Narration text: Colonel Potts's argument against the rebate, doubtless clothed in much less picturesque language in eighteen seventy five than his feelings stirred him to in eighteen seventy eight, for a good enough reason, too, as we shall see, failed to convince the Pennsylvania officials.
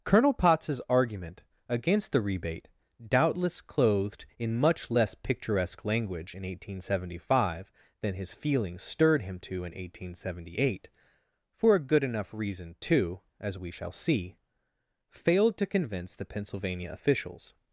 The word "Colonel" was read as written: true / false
true